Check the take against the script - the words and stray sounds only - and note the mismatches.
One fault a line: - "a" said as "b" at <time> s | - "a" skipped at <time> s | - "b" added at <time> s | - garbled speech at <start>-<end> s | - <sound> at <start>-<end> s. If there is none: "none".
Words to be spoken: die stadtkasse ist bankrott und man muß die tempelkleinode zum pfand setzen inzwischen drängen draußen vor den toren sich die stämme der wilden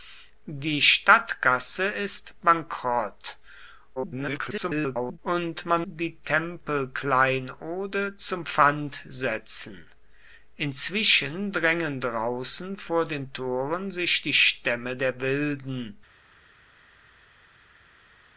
- garbled speech at 4.0-5.2 s
- "muß" skipped at 5.9 s